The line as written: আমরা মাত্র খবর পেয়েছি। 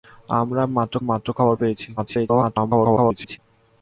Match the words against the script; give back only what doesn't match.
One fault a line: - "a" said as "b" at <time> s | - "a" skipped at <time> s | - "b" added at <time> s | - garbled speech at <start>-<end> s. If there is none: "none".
- "মাত্র" added at 1.1 s
- garbled speech at 2.0-3.4 s